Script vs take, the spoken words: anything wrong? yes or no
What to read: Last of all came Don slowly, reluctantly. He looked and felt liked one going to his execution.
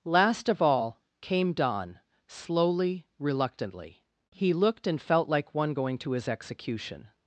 yes